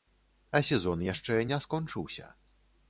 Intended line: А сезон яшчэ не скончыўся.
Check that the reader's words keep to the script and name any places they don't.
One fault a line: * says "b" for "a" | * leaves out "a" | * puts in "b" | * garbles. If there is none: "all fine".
all fine